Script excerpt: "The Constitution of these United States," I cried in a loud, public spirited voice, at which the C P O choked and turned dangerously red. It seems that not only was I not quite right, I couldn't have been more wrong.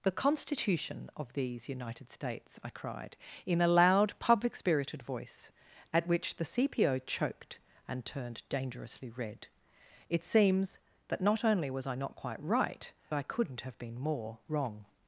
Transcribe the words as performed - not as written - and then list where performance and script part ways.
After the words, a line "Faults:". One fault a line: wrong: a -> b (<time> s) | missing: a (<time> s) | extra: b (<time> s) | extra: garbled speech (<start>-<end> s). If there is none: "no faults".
"The Constitution of these United States," I cried in a loud, public spirited voice, at which the C P O choked and turned dangerously red. It seems that not only was I not quite right, I couldn't have been more wrong.
Faults:
no faults